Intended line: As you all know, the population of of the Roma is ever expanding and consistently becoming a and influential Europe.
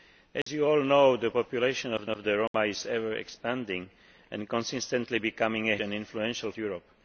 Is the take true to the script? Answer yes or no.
yes